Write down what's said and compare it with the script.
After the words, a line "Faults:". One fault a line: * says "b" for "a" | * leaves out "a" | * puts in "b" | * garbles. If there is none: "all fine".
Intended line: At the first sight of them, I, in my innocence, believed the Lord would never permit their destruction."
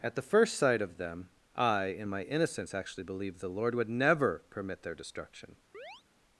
At the first sight of them, I, in my innocence, actually believed the Lord would never permit their destruction."
Faults:
* puts in "actually"